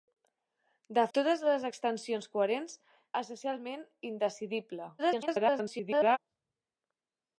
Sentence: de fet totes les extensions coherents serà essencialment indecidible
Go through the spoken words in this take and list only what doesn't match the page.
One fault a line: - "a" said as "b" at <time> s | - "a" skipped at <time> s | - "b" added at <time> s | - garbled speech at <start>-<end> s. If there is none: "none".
- "fet" skipped at 1.0 s
- "serà" skipped at 2.8 s
- garbled speech at 5.0-6.2 s